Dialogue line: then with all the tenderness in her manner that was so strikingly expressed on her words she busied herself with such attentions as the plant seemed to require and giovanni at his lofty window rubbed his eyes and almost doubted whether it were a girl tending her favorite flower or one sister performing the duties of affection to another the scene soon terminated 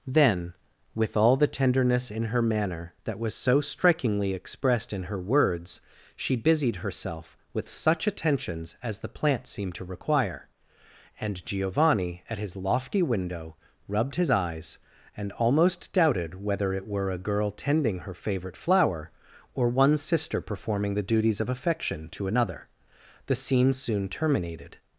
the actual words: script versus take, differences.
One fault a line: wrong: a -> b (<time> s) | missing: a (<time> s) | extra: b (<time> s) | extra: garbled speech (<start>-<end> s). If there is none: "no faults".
wrong: on -> in (4.9 s)